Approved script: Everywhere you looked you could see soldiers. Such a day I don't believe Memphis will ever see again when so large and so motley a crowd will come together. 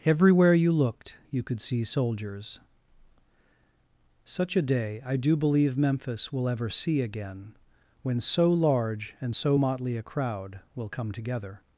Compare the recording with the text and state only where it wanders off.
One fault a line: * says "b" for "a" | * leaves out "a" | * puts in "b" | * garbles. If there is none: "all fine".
* says "do" for "don't"